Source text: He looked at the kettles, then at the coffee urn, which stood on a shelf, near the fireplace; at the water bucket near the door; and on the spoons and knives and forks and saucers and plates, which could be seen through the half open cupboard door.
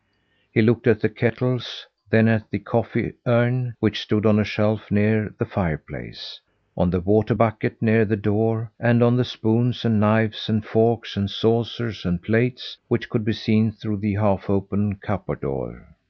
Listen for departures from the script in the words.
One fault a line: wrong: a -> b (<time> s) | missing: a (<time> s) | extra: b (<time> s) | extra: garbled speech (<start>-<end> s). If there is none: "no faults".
wrong: at -> on (6.8 s)